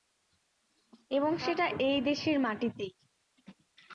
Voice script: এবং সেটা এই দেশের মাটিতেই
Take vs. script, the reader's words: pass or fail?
pass